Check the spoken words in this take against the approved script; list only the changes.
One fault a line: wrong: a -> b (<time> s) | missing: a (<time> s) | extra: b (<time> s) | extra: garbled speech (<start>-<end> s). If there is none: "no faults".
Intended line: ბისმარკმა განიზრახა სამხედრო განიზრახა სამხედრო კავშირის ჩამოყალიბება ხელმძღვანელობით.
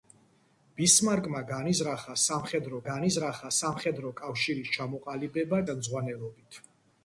no faults